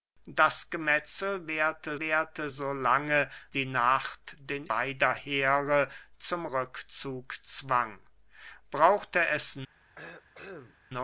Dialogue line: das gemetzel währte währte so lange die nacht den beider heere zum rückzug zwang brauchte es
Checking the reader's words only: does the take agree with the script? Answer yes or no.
yes